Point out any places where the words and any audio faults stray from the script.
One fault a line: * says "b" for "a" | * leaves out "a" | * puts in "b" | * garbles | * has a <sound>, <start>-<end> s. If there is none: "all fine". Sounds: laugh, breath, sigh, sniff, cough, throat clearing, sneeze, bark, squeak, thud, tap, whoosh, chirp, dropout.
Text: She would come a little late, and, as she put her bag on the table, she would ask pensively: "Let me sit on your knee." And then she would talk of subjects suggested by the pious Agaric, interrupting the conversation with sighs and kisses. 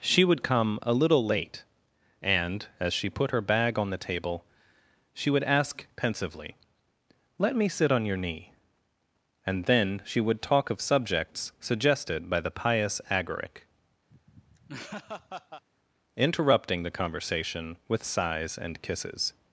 * has a laugh, 14.1-15.6 s